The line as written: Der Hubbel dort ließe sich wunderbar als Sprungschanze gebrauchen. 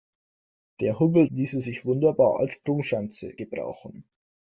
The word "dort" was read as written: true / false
false